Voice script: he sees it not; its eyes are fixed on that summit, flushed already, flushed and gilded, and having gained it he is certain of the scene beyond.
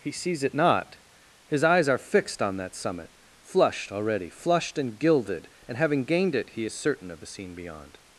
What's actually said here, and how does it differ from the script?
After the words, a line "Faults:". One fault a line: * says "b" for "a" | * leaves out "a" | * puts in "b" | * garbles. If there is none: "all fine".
he sees it not; his eyes are fixed on that summit, flushed already, flushed and gilded, and having gained it he is certain of the scene beyond.
Faults:
* says "his" for "its"